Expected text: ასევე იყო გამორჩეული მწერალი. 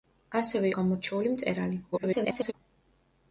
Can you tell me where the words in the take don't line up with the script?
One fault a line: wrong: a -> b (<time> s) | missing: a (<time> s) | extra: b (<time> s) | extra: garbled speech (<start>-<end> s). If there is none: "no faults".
missing: იყო (0.7 s)
extra: garbled speech (1.9-2.5 s)